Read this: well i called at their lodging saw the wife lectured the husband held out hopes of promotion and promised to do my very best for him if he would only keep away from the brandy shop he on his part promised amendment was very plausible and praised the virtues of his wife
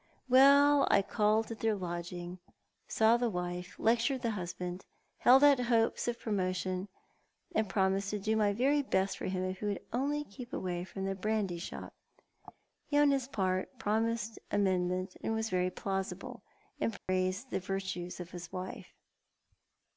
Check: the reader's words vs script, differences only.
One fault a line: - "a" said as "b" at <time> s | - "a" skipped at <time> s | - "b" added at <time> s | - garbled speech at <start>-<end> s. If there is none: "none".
none